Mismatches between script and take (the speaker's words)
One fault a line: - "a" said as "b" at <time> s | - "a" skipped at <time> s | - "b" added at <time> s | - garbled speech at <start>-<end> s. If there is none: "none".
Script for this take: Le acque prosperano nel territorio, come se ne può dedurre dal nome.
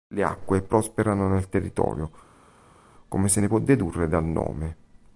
none